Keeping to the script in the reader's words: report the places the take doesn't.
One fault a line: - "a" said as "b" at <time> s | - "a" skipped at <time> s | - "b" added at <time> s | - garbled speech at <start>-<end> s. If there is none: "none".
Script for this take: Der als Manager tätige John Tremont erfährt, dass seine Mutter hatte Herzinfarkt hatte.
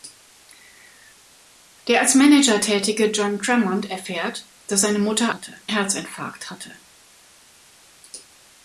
none